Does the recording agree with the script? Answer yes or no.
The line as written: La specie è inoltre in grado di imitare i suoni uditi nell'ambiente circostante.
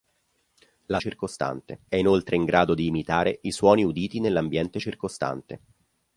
no